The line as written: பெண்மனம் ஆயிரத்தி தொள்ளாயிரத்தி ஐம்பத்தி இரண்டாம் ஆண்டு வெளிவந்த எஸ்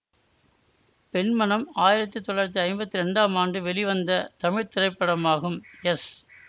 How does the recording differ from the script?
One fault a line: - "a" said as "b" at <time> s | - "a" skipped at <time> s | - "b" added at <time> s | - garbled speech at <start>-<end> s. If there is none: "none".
- "தமிழ் திரைப்படமாகும்" added at 4.4 s